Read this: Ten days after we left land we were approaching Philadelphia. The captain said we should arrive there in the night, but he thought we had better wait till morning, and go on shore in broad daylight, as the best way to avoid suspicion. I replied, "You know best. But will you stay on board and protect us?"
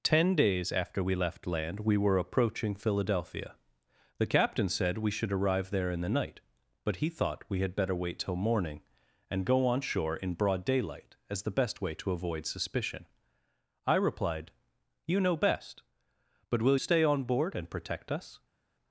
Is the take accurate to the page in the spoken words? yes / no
no